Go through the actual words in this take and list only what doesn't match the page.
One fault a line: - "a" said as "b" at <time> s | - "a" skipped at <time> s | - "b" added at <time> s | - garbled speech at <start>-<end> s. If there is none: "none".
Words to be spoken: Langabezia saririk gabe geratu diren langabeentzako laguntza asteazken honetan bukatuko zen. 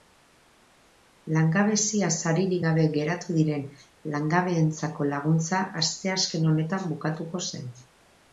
none